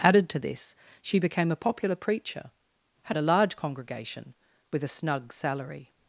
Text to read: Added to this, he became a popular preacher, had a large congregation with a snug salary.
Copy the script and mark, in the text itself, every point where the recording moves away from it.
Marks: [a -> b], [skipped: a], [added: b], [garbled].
Added to this, [he -> she] became a popular preacher, had a large congregation with a snug salary.